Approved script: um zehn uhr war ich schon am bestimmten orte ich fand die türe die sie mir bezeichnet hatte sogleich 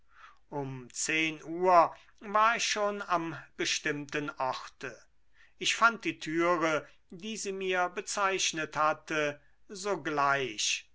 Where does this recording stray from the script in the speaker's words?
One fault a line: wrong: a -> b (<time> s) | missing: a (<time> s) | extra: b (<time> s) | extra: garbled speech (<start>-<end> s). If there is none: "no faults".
no faults